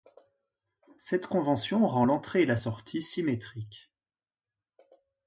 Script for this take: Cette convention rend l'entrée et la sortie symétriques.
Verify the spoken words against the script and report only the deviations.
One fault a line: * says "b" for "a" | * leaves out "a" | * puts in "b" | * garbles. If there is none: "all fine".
all fine